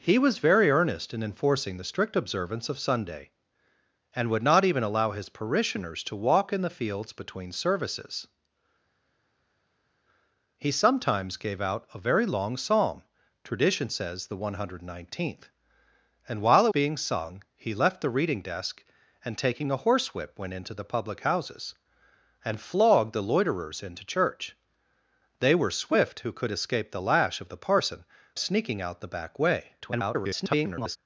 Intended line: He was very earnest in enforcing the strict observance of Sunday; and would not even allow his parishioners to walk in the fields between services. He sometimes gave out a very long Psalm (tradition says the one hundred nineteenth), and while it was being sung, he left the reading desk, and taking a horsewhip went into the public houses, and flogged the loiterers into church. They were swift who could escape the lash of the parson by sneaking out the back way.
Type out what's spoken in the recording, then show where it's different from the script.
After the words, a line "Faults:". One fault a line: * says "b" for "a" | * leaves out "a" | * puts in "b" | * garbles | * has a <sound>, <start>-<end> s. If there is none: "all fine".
He was very earnest in enforcing the strict observance of Sunday; and would not even allow his parishioners to walk in the fields between services. He sometimes gave out a very long Psalm (tradition says the one hundred nineteenth), and while it being sung, he left the reading desk, and taking a horsewhip went into the public houses, and flogged the loiterers into church. They were swift who could escape the lash of the parson sneaking out the back way. [garbled]
Faults:
* leaves out "was"
* leaves out "by"
* garbles